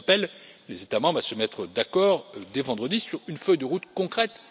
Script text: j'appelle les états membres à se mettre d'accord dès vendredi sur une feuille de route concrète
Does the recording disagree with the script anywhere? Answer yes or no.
no